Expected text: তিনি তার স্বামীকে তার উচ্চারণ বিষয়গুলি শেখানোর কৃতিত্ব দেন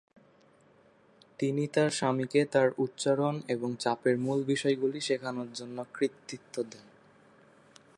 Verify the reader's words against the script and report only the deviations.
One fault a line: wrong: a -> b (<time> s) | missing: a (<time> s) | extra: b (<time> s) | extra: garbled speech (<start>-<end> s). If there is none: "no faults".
extra: এবং চাপের মূল (3.5 s)
extra: জন্য (5.5 s)